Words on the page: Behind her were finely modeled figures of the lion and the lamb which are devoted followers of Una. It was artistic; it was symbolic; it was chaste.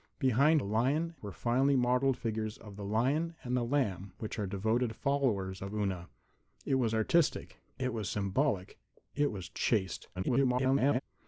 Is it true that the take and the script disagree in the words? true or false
true